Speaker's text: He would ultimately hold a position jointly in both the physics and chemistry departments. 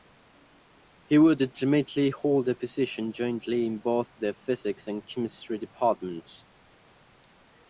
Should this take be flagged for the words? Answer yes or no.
no